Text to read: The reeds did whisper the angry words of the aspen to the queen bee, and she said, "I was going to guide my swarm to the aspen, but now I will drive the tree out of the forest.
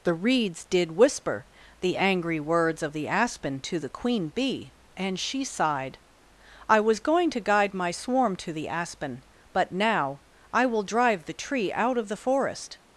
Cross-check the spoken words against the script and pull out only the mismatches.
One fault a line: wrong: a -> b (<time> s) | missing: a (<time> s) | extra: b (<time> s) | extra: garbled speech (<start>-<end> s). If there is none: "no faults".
wrong: said -> sighed (5.4 s)